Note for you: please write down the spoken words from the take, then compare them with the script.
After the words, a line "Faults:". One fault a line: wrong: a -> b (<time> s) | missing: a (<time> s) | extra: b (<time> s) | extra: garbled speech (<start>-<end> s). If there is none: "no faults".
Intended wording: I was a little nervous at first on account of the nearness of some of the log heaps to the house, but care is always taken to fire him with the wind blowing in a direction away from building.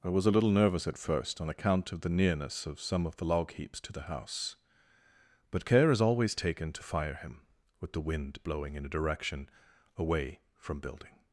I was a little nervous at first on account of the nearness of some of the log heaps to the house, but care is always taken to fire him with the wind blowing in a direction away from building.
Faults:
no faults